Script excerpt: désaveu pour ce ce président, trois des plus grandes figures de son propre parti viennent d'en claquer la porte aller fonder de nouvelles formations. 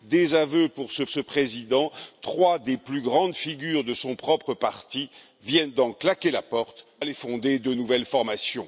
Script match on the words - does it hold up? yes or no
yes